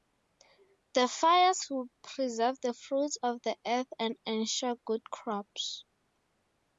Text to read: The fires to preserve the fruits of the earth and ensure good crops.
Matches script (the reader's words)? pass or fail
pass